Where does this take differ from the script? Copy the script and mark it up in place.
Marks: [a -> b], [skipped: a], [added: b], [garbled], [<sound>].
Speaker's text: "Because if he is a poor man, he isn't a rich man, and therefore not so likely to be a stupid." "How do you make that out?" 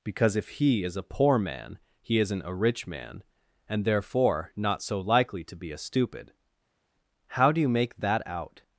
"Because if he is a poor man, he isn't a rich man, and therefore not so likely to be a stupid." "How do you make that out?"